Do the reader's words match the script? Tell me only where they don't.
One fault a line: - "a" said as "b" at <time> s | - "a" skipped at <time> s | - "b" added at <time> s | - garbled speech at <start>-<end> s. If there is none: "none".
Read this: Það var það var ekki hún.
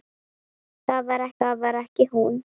none